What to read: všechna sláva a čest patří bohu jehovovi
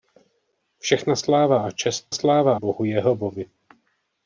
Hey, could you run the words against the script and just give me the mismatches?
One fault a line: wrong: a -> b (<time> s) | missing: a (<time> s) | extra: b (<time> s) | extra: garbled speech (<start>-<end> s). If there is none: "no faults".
wrong: patří -> sláva (2.1 s)